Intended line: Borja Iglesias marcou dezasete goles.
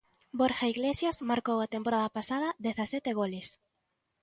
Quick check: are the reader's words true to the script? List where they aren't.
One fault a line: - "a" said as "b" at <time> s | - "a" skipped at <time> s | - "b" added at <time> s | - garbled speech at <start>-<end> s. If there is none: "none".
- "a temporada pasada" added at 1.6 s